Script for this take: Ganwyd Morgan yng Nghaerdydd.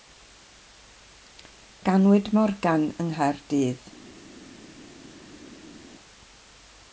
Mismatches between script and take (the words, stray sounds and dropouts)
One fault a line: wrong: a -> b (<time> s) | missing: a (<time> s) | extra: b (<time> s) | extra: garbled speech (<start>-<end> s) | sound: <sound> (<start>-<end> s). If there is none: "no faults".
no faults